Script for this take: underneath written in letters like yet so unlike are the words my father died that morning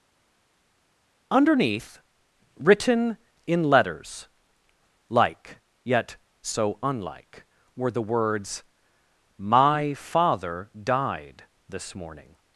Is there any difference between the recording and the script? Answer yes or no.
yes